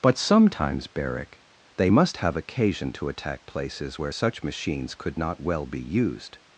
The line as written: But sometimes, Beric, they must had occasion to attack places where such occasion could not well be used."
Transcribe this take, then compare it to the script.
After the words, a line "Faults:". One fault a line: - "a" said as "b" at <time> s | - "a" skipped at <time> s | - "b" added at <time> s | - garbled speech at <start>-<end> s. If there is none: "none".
But sometimes, Beric, they must have occasion to attack places where such machines could not well be used."
Faults:
- "had" said as "have" at 2.2 s
- "occasion" said as "machines" at 4.4 s